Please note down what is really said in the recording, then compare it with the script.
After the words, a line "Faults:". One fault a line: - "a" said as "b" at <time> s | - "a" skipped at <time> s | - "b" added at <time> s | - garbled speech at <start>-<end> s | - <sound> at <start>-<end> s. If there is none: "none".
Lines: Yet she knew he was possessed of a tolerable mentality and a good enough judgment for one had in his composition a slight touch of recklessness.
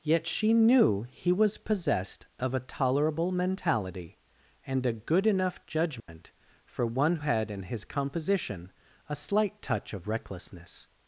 Yet she knew he was possessed of a tolerable mentality and a good enough judgment for one had in his composition a slight touch of recklessness.
Faults:
- dropout at 6.0-6.1 s